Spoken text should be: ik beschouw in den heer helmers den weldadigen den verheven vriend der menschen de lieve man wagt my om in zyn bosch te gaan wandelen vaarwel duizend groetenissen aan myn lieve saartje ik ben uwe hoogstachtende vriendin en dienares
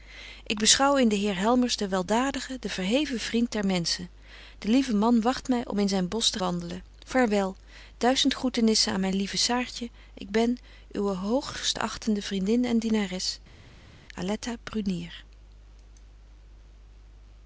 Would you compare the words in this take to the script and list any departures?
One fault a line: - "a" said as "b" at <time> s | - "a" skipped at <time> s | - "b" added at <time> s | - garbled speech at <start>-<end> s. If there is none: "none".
- "gaan" skipped at 6.4 s